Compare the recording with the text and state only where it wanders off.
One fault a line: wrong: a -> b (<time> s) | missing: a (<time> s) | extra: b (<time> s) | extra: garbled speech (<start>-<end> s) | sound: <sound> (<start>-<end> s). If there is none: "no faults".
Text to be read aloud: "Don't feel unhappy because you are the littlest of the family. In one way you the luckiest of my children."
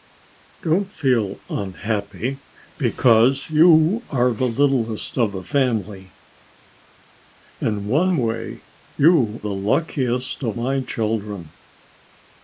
no faults